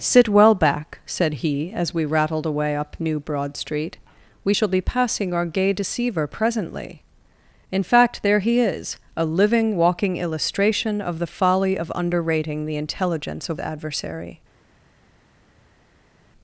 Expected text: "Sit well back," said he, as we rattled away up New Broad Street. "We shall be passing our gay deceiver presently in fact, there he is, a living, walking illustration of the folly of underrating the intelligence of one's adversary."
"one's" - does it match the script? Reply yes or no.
no